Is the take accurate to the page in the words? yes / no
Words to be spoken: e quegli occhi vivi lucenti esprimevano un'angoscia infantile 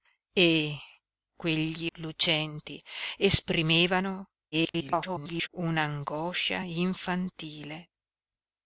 no